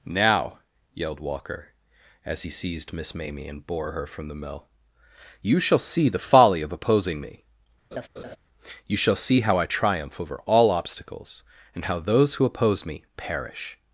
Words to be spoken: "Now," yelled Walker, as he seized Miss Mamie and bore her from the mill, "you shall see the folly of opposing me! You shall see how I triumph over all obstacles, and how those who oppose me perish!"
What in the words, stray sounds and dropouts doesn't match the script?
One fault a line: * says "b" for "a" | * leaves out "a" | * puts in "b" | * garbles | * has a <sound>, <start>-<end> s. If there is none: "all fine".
* has a laugh, 7.9-8.4 s